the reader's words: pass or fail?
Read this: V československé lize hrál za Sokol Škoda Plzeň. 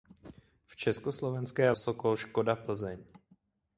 fail